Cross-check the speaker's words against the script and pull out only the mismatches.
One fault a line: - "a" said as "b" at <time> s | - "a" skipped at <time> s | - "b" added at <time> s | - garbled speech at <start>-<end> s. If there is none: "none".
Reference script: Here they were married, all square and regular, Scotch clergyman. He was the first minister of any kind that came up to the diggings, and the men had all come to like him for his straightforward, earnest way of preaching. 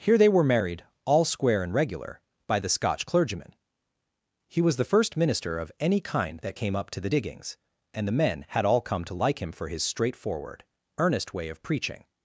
- "by the" added at 2.5 s